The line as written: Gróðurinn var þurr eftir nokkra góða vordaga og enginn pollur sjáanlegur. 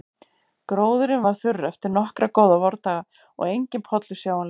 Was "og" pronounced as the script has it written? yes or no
yes